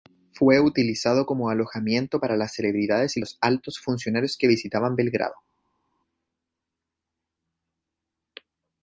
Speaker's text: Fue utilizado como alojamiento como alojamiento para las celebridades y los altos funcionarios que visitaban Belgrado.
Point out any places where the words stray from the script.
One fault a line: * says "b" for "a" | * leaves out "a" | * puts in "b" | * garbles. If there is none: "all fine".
* leaves out "como alojamiento"